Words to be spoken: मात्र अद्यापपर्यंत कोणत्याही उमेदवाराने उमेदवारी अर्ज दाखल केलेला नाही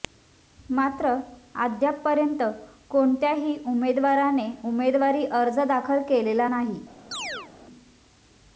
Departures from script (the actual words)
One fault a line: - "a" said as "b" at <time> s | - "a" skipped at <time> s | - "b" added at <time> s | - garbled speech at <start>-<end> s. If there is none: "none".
none